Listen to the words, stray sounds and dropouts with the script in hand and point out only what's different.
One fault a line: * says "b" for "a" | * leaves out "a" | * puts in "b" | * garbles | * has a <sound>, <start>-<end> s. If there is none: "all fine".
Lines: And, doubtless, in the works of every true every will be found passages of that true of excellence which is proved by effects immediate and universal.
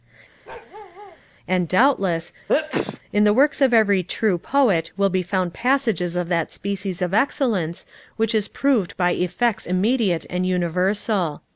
* has a bark, 0.4-1.2 s
* has a sneeze, 2.5-3.0 s
* says "poet" for "every"
* says "species" for "true"